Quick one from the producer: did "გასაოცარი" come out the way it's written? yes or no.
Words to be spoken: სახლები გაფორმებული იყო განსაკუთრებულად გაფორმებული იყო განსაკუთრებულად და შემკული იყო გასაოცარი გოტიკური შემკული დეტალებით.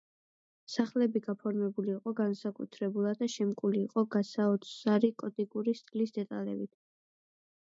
yes